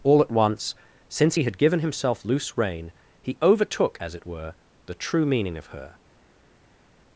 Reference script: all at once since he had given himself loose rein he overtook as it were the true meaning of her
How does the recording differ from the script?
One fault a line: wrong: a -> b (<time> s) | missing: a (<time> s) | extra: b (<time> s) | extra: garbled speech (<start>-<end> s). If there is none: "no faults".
no faults